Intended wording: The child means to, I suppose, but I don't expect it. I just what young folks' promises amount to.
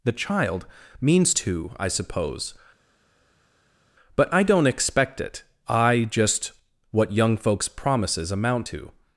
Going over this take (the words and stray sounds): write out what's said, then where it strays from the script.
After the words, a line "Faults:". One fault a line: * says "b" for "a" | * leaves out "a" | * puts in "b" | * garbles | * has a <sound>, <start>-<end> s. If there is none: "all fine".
The child means to, I suppose, but I don't expect it. I just what young folks' promises amount to.
Faults:
all fine